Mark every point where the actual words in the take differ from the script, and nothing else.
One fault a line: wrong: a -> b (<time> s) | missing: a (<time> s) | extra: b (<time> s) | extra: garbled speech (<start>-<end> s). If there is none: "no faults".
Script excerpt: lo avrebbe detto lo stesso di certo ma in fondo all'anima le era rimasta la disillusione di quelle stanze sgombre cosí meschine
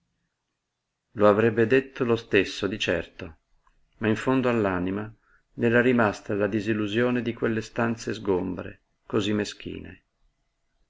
no faults